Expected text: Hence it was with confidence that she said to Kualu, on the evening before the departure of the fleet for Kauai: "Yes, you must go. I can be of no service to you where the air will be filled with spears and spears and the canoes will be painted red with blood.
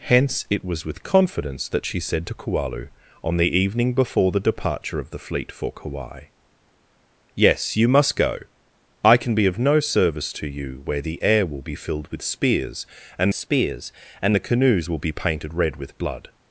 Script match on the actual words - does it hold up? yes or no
yes